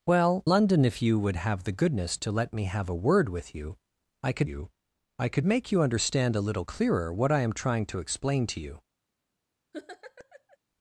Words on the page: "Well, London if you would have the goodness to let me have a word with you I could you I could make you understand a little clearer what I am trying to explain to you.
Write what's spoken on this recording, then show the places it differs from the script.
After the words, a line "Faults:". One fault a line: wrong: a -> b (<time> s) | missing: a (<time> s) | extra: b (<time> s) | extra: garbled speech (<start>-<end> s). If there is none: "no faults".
"Well, London if you would have the goodness to let me have a word with you I could you I could make you understand a little clearer what I am trying to explain to you.
Faults:
no faults